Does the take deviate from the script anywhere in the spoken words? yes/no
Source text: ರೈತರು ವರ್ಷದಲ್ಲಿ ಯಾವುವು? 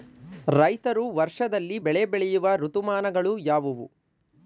yes